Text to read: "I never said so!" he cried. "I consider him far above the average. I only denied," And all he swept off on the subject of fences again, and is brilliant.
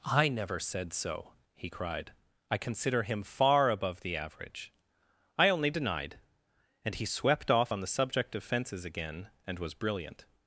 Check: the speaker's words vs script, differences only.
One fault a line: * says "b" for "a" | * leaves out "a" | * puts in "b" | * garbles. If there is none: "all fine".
* leaves out "all"
* says "was" for "is"